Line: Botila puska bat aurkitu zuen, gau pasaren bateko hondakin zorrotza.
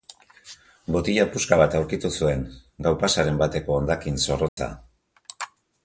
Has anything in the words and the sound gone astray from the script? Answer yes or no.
yes